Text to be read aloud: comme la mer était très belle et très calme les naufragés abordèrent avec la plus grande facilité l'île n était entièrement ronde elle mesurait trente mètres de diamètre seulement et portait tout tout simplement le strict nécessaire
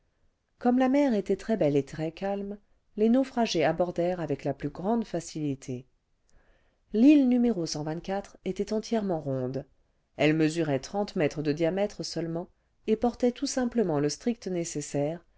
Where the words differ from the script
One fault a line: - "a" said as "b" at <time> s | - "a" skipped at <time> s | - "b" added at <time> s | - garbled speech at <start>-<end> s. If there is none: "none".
- "tout" skipped at 13.5 s